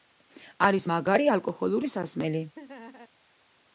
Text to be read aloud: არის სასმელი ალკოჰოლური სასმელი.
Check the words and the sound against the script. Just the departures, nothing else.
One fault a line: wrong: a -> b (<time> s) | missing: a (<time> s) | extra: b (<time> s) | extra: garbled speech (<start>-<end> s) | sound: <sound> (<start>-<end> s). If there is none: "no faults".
wrong: სასმელი -> მაგარი (0.9 s)
sound: laugh (2.6-3.1 s)